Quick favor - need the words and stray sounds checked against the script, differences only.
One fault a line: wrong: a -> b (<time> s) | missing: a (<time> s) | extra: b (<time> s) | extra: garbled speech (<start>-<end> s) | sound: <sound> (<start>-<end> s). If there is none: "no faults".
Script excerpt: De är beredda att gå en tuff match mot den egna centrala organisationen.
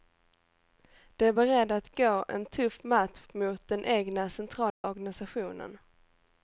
sound: dropout (4.7-4.8 s)